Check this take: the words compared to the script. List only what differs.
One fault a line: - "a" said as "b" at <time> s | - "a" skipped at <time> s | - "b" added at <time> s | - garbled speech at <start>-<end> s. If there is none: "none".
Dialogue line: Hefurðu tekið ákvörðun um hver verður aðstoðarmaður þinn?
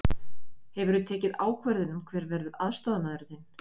none